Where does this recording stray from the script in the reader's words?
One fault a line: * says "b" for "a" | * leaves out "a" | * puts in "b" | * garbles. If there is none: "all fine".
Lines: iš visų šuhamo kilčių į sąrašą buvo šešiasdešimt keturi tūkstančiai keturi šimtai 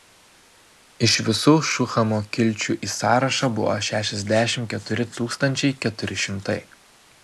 all fine